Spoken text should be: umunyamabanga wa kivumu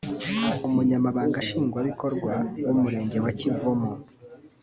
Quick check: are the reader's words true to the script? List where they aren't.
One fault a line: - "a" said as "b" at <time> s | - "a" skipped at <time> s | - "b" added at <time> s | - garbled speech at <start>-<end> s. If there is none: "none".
- "nshingwabikorwa w'umurenge" added at 1.4 s